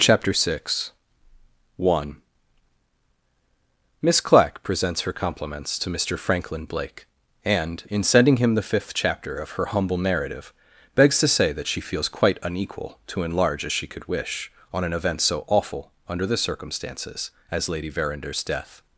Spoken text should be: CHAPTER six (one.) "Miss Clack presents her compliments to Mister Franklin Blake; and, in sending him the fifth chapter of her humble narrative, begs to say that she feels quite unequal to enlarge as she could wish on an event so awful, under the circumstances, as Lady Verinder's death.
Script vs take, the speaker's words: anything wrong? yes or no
no